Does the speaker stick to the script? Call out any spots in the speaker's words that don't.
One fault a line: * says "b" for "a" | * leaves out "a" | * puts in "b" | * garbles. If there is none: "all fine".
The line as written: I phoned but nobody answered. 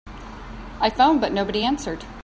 all fine